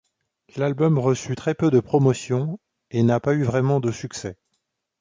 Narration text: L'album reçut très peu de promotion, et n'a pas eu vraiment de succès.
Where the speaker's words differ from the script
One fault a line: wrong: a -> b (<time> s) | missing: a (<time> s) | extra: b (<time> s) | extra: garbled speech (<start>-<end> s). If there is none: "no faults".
no faults